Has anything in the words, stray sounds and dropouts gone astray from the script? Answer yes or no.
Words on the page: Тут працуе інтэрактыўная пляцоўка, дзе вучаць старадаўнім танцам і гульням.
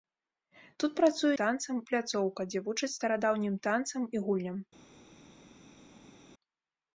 yes